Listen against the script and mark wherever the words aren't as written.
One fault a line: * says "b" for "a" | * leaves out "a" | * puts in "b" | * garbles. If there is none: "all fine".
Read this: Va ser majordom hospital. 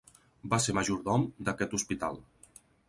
* puts in "d'aquest"